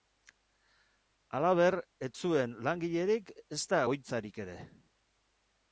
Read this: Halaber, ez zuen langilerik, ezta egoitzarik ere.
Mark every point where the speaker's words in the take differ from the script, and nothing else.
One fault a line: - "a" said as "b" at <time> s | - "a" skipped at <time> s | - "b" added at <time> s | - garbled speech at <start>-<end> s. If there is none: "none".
none